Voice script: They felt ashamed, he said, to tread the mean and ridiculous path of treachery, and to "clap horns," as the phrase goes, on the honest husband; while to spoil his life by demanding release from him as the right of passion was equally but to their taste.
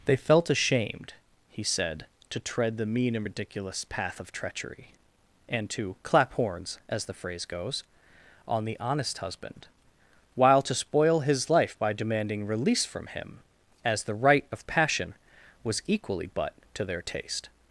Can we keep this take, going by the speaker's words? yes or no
yes